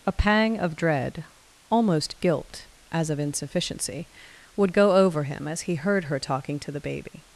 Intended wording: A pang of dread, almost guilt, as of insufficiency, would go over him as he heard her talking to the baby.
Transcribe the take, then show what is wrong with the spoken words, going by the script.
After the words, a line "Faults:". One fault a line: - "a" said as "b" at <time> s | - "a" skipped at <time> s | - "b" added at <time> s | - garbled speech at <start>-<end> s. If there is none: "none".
A pang of dread, almost guilt, as of insufficiency, would go over him as he heard her talking to the baby.
Faults:
none